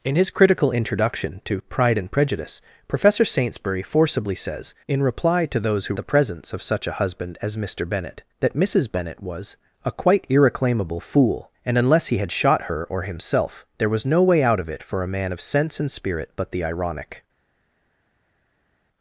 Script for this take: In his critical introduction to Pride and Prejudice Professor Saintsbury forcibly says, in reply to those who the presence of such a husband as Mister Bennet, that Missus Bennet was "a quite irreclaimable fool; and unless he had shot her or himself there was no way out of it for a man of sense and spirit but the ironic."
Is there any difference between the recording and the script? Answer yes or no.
no